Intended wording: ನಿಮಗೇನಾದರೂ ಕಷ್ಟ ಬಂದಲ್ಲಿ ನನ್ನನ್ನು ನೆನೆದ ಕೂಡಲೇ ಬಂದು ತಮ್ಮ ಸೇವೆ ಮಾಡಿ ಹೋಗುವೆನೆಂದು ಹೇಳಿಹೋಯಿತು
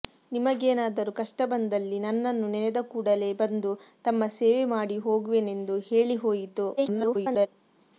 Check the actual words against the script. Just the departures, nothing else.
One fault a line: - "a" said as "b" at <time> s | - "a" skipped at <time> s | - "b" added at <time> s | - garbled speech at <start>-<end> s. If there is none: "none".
- garbled speech at 6.8-7.5 s